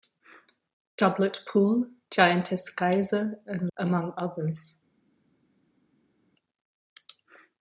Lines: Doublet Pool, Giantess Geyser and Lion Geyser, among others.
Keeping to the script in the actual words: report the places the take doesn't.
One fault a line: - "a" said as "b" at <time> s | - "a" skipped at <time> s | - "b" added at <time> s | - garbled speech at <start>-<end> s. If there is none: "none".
- "Lion Geyser" skipped at 3.7 s